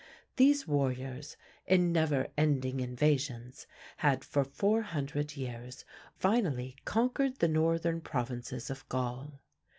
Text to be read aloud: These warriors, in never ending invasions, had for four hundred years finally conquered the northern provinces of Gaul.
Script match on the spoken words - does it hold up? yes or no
yes